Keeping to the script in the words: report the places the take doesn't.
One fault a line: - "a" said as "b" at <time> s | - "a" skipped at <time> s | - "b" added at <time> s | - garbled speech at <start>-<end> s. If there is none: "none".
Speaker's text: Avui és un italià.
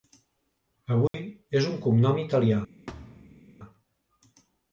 - "cognom" added at 1.8 s